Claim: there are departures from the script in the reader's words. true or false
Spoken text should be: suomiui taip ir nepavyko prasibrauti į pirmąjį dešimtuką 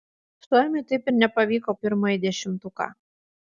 true